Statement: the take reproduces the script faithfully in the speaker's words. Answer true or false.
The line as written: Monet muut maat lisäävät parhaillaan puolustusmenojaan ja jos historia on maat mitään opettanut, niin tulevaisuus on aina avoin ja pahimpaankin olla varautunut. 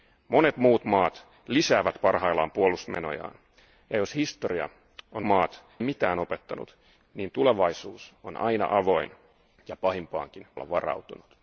true